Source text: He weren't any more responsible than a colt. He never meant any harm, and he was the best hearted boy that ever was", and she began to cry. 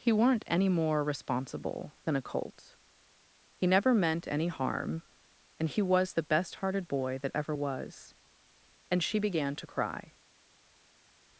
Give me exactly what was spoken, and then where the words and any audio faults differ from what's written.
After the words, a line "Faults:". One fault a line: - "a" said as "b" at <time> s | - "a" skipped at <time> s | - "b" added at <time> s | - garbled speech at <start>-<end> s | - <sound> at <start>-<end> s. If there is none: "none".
He weren't any more responsible than a colt. He never meant any harm, and he was the best hearted boy that ever was", and she began to cry.
Faults:
none